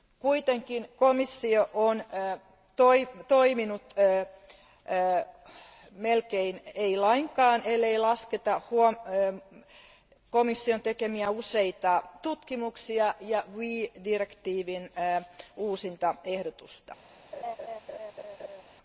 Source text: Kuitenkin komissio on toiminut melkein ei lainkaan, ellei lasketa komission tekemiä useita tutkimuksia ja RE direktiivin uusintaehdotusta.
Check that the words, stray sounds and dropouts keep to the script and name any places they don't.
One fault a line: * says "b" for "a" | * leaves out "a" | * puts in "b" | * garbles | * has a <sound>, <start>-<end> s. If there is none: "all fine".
* has a laugh, 17.3-18.6 s